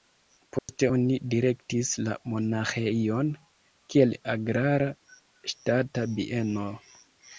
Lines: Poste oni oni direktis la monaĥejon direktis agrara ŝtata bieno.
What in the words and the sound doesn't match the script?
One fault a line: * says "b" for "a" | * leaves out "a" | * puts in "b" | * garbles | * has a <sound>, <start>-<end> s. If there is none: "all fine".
* has a dropout, 0.6-0.7 s
* leaves out "oni"
* says "kiel" for "direktis"